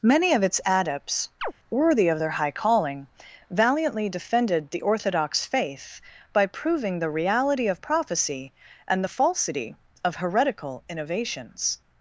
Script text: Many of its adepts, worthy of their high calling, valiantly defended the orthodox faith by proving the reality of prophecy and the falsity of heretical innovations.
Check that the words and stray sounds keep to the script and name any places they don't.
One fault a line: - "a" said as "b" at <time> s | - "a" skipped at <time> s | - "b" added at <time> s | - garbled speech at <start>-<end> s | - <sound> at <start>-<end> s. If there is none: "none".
- chirp at 1.4-1.5 s